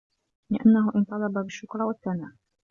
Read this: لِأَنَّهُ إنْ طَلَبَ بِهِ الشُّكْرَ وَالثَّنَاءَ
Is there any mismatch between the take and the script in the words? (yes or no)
yes